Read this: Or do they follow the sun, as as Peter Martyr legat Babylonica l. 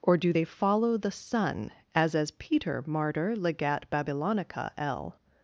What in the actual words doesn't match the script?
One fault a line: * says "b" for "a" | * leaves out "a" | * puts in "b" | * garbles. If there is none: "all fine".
all fine